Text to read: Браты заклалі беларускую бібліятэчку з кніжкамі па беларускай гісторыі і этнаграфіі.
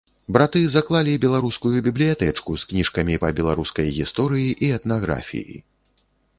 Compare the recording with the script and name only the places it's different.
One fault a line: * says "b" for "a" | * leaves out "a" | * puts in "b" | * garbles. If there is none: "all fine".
all fine